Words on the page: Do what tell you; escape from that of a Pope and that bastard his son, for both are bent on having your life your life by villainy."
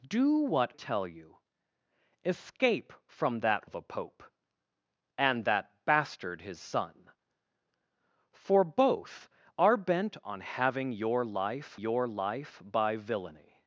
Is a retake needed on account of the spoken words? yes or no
no